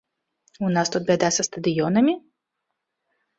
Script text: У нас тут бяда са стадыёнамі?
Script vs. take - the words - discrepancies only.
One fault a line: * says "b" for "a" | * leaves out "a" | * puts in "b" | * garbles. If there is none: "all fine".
all fine